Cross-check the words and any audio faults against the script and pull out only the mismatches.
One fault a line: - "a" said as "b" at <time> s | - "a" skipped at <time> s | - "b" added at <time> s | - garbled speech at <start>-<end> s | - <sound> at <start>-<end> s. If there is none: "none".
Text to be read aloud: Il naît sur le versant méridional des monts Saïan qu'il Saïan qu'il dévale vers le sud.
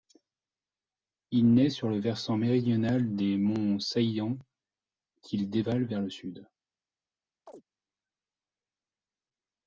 - "Saïan qu'il" skipped at 5.5 s
- chirp at 7.5-7.6 s